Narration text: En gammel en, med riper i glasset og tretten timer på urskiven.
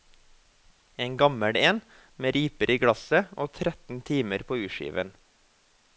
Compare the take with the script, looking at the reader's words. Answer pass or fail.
pass